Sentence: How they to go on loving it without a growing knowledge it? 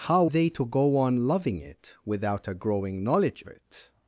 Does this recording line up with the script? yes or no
yes